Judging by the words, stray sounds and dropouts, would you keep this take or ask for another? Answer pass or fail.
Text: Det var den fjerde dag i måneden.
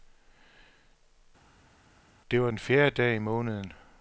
pass